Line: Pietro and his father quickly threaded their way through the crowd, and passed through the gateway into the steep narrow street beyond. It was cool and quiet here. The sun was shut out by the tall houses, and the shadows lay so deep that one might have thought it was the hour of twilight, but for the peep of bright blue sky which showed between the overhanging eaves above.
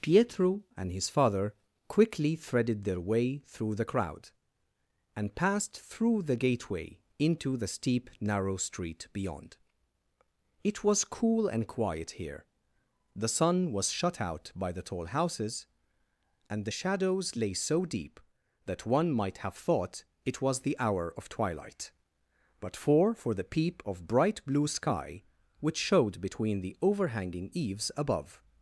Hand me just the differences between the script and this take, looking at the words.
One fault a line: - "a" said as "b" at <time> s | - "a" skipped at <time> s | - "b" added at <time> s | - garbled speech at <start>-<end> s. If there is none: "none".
- "for" added at 23.2 s